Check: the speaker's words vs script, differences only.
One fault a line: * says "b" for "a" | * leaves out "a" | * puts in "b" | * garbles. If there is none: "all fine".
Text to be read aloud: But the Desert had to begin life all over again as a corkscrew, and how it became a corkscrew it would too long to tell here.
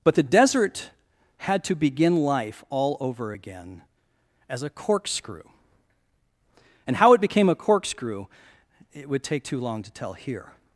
* puts in "take"